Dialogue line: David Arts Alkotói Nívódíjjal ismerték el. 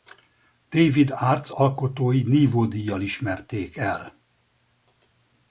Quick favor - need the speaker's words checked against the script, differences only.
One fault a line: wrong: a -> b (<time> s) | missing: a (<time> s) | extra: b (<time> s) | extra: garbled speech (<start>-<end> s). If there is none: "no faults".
no faults